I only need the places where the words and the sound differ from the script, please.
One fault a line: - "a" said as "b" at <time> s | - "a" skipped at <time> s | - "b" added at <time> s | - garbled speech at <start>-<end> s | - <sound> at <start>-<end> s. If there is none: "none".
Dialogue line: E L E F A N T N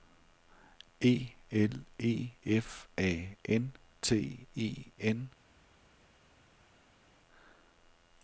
- "E" added at 4.5 s